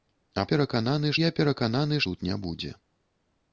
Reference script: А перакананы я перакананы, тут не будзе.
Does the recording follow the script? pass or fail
pass